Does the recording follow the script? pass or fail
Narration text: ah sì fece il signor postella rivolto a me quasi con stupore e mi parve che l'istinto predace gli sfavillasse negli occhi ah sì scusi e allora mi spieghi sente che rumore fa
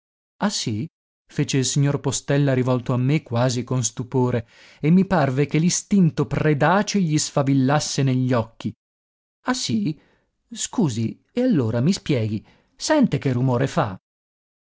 pass